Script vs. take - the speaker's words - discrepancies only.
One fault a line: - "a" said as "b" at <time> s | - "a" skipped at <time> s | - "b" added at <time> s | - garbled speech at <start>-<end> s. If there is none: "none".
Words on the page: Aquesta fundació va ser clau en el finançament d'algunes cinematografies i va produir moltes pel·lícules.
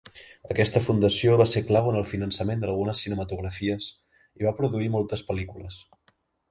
none